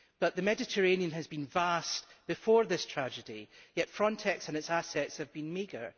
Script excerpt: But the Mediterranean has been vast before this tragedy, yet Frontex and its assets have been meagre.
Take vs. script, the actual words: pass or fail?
pass